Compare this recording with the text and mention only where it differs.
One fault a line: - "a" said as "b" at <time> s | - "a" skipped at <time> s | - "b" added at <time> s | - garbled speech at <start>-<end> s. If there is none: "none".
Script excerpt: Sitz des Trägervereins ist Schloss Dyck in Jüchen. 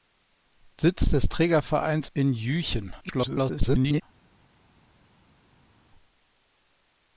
- "ist Schloss Dyck" skipped at 2.1 s
- garbled speech at 3.0-4.0 s